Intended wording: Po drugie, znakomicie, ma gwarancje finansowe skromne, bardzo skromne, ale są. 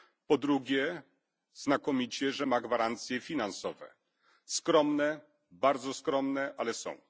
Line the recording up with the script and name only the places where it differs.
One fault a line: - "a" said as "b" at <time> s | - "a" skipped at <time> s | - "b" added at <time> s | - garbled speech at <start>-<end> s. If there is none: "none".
- "że" added at 2.3 s